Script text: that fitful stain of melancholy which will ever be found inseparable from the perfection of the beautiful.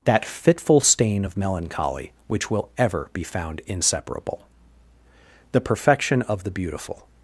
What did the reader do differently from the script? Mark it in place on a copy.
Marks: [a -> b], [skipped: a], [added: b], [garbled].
that fitful stain of melancholy which will ever be found inseparable [skipped: from] the perfection of the beautiful.